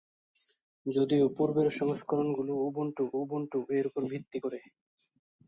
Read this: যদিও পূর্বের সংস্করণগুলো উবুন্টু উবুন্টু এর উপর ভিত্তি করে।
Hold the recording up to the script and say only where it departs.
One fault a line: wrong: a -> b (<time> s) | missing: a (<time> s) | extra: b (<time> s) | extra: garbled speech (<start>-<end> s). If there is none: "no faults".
no faults